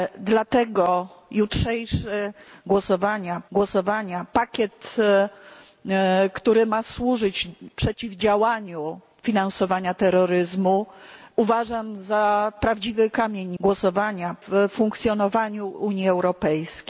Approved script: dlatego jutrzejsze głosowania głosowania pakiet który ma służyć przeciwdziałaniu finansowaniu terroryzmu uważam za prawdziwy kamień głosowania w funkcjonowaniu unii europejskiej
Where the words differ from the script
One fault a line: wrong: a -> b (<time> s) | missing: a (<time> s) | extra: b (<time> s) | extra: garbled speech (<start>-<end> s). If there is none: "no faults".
no faults